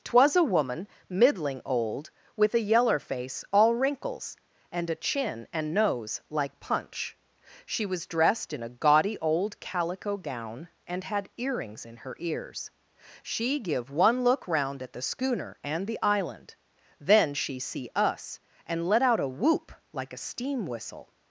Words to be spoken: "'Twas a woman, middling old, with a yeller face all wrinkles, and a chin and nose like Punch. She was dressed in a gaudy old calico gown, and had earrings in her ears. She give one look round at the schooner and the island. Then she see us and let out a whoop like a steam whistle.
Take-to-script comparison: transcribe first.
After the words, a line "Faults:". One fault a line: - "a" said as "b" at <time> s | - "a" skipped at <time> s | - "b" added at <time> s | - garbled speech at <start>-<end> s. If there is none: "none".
"'Twas a woman, middling old, with a yeller face all wrinkles, and a chin and nose like Punch. She was dressed in a gaudy old calico gown, and had earrings in her ears. She give one look round at the schooner and the island. Then she see us and let out a whoop like a steam whistle.
Faults:
none